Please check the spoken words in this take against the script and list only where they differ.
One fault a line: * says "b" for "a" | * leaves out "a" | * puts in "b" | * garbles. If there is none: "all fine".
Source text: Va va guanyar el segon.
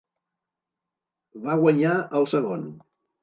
* leaves out "va"